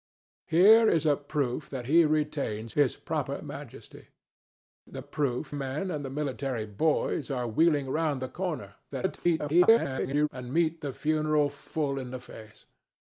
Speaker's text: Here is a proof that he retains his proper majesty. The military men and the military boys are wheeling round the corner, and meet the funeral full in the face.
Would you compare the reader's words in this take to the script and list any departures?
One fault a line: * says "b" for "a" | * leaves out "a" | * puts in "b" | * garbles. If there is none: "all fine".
* says "proof" for "military"
* garbles